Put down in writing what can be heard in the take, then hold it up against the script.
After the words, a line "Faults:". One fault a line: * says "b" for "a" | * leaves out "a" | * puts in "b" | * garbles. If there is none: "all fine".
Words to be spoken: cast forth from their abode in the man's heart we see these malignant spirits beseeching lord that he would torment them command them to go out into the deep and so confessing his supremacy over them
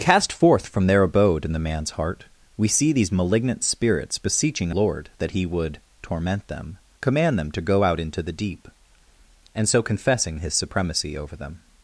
cast forth from their abode in the man's heart we see these malignant spirits beseeching lord that he would torment them command them to go out into the deep and so confessing his supremacy over them
Faults:
all fine